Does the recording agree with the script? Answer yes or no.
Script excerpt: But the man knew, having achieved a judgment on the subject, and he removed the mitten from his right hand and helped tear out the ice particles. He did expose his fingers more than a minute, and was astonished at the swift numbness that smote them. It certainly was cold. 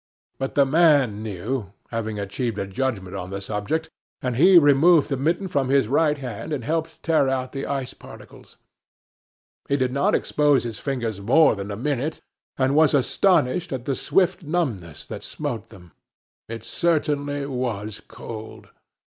no